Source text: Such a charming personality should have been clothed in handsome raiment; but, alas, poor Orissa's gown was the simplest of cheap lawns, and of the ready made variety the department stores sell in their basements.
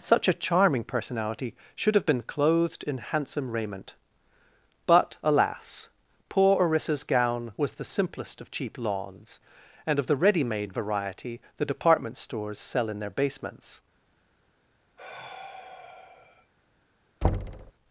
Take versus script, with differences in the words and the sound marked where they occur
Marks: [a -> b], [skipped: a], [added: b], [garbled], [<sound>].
Such a charming personality should have been clothed in handsome raiment; but, alas, poor Orissa's gown was the simplest of cheap lawns, and of the ready made variety the department stores sell in their basements. [sigh] [thud]